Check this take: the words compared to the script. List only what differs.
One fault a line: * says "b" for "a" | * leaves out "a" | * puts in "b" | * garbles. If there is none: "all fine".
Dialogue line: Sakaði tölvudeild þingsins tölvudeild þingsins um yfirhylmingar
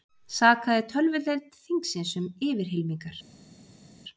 * leaves out "tölvudeild þingsins"